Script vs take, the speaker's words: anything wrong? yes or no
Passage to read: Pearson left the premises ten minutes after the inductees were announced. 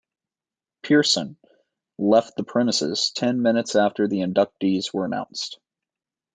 no